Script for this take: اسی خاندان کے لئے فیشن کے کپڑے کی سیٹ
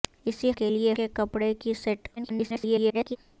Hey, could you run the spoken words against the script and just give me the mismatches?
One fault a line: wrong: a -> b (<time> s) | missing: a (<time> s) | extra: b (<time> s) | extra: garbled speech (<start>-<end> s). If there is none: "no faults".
missing: خاندان (0.5 s)
missing: فیشن (0.9 s)
extra: garbled speech (2.2-3.2 s)